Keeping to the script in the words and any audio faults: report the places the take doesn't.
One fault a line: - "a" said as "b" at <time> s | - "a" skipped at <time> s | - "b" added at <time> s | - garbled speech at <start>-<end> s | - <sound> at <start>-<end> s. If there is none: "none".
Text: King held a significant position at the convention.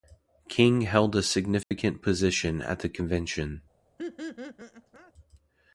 - dropout at 1.6-1.7 s
- laugh at 4.0-5.1 s